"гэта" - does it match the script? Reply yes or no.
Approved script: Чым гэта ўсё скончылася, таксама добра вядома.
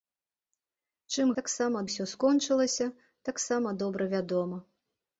no